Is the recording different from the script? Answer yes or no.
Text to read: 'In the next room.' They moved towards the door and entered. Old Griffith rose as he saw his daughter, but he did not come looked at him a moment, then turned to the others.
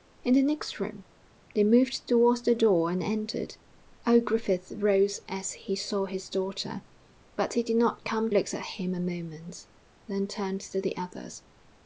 no